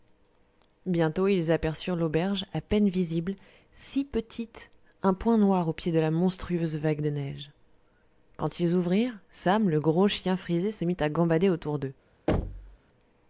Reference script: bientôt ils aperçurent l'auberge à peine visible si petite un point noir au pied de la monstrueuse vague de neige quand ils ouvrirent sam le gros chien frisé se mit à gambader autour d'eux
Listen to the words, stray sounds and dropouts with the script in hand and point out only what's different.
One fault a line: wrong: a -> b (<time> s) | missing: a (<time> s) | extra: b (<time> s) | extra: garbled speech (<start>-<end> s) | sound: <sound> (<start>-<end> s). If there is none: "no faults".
sound: thud (12.3-12.8 s)